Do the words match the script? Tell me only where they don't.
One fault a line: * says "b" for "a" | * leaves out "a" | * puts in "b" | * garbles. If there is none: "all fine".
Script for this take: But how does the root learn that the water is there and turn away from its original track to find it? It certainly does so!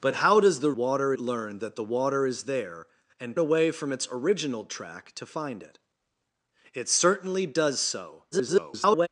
* says "water" for "root"
* leaves out "turn"
* garbles